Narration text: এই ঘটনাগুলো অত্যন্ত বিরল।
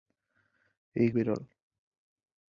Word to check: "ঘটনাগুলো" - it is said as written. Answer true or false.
false